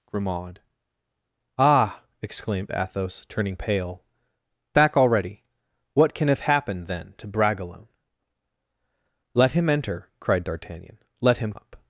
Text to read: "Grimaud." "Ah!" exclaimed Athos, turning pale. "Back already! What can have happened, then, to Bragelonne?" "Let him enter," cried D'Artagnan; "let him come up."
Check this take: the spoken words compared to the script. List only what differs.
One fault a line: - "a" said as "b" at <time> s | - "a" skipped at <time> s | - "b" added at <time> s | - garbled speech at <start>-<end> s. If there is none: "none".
- "come" skipped at 11.5 s